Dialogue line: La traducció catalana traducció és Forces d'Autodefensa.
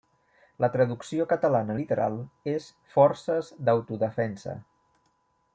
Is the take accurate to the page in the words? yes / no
no